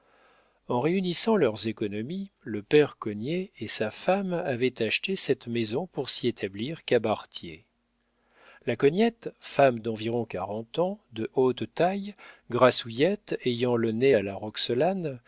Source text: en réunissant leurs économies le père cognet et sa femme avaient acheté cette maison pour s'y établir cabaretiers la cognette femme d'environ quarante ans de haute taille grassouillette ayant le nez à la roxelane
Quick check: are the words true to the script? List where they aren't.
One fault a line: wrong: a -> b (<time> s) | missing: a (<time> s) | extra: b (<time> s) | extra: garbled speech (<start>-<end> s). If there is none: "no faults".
no faults